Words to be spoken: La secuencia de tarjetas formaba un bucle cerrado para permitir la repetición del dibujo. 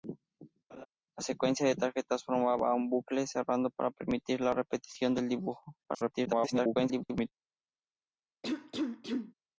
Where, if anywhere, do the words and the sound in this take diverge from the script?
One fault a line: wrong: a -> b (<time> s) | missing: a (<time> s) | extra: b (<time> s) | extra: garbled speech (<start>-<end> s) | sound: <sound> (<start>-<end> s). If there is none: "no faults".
sound: laugh (0.7-0.9 s)
extra: garbled speech (5.8-7.3 s)
sound: cough (8.4-9.3 s)